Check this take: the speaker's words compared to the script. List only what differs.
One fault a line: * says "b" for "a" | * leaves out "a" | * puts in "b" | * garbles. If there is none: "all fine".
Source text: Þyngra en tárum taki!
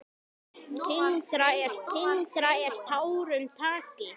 * puts in "þyngra en"